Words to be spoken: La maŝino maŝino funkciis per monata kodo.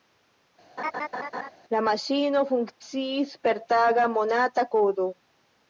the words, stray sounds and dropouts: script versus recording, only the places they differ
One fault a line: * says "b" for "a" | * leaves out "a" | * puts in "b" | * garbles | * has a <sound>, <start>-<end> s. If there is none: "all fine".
* has a laugh, 0.8-1.5 s
* leaves out "maŝino"
* puts in "taga"